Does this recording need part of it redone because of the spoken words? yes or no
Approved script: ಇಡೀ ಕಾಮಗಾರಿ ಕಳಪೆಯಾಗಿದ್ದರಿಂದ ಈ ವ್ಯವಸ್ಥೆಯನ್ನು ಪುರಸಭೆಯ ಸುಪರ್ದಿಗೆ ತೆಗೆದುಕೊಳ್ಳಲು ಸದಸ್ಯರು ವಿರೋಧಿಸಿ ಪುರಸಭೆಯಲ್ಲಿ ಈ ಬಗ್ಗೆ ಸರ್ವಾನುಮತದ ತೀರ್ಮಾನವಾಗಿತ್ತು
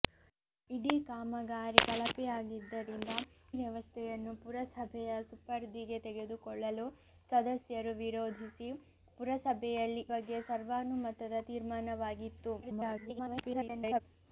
yes